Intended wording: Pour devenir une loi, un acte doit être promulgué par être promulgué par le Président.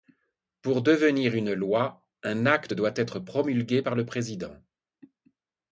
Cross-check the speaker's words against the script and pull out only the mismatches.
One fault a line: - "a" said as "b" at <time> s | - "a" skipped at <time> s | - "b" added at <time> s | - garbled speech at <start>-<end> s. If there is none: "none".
- "être promulgué par" skipped at 3.9 s